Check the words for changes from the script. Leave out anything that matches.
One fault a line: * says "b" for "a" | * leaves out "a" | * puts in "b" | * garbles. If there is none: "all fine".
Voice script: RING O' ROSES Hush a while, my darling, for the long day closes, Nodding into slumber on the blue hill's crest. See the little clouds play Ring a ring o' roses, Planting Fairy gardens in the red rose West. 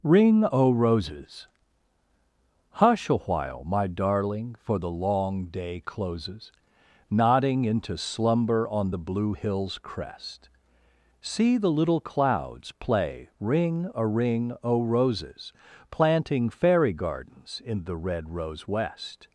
all fine